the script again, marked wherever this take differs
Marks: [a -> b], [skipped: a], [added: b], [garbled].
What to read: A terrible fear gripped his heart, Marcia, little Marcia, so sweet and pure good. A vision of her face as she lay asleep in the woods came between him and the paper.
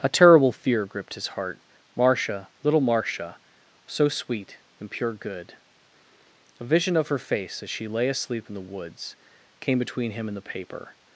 A terrible fear gripped his heart, Marcia, little Marcia, so sweet and pure good. A vision of her face as she lay asleep in the woods came between him and the paper.